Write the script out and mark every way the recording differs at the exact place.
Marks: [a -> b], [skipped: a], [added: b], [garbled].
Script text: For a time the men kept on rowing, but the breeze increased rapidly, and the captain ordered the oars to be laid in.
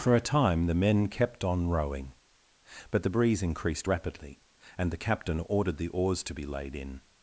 For a time the men kept on rowing, but the breeze increased rapidly, and the captain ordered the oars to be laid in.